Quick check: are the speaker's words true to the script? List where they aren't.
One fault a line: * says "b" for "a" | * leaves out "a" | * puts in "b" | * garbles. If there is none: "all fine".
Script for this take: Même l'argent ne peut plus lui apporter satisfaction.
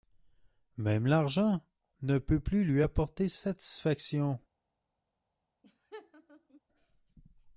all fine